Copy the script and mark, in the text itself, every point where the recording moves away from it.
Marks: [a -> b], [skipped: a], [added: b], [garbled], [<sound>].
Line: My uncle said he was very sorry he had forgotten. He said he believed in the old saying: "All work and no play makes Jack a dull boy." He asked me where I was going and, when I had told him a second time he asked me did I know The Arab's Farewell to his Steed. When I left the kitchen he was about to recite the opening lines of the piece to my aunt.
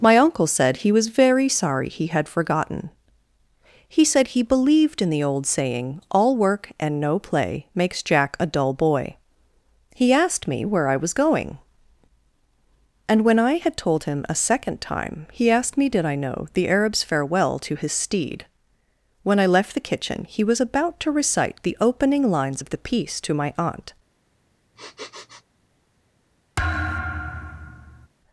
My uncle said he was very sorry he had forgotten. He said he believed in the old saying: "All work and no play makes Jack a dull boy." He asked me where I was going and, when I had told him a second time he asked me did I know The Arab's Farewell to his Steed. When I left the kitchen he was about to recite the opening lines of the piece to my aunt. [sniff] [thud]